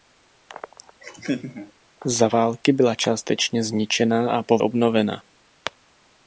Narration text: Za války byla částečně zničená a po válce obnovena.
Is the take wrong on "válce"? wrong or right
wrong